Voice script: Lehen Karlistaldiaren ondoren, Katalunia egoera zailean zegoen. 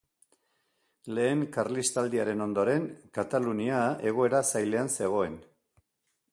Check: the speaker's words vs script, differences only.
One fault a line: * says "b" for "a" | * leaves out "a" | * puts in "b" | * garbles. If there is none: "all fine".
all fine